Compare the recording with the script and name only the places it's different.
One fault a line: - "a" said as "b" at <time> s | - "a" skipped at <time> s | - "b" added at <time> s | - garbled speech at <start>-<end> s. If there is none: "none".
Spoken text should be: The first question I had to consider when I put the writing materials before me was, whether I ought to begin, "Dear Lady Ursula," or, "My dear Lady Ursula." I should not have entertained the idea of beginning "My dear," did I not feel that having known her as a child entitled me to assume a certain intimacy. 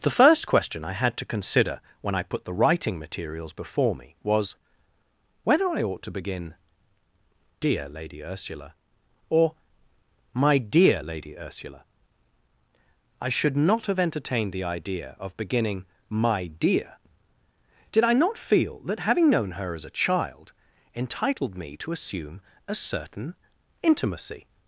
none